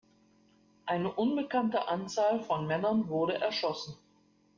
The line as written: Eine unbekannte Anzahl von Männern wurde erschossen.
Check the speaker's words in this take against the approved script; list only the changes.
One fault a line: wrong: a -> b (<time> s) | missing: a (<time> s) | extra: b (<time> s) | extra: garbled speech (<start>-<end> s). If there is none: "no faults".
no faults